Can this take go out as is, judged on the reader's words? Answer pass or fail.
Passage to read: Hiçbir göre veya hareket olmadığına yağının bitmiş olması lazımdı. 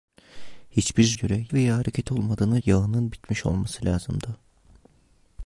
pass